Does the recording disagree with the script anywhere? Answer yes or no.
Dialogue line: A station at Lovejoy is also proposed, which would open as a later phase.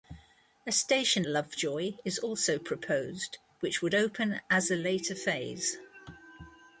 yes